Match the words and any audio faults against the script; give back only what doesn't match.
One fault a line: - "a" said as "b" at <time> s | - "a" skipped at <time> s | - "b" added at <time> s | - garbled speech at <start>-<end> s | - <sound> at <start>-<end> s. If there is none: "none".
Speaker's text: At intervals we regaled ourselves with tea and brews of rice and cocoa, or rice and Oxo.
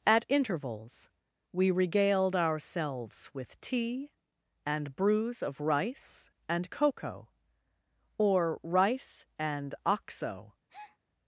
- breath at 10.7-11.0 s